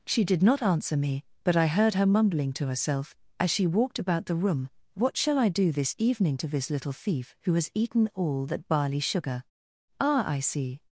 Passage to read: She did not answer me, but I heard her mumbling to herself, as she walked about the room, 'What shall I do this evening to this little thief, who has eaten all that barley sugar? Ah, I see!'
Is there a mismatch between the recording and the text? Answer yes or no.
no